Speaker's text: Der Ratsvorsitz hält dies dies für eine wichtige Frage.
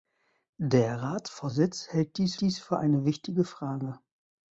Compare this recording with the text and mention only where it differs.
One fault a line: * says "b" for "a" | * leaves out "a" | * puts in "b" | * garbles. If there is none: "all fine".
all fine